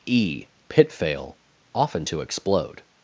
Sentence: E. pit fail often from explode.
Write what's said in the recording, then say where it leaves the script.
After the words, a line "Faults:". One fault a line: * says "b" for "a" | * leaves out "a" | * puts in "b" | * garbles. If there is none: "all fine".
E. pit fail often to explode.
Faults:
* says "to" for "from"